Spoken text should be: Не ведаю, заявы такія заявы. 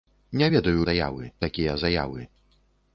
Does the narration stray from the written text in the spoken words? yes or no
no